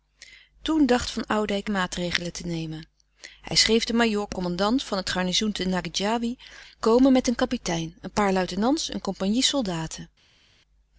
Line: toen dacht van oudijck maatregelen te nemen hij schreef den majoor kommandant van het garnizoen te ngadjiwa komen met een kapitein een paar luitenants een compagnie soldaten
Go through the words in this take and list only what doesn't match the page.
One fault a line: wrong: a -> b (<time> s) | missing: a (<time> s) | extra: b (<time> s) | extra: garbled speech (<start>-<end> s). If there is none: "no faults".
no faults